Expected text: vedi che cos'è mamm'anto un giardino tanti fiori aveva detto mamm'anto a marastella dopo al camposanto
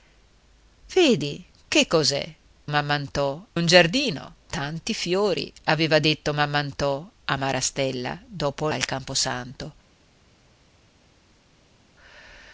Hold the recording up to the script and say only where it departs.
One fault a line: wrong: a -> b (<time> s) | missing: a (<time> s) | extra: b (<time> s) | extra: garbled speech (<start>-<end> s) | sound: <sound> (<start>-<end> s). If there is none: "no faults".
no faults